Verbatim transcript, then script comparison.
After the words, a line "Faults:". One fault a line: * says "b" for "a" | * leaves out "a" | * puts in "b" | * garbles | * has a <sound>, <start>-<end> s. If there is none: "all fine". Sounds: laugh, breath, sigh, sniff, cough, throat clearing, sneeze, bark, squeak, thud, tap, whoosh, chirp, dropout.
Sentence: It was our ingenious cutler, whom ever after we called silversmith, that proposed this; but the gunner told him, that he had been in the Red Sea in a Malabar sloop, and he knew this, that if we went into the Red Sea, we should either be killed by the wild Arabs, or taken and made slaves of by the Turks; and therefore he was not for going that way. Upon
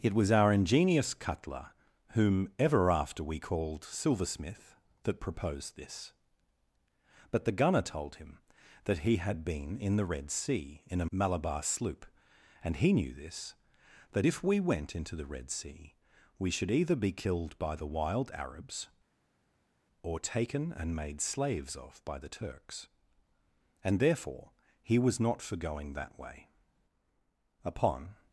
It was our ingenious cutler, whom ever after we called silversmith, that proposed this; but the gunner told him, that he had been in the Red Sea in a Malabar sloop, and he knew this, that if we went into the Red Sea, we should either be killed by the wild Arabs, or taken and made slaves of by the Turks; and therefore he was not for going that way. Upon
Faults:
all fine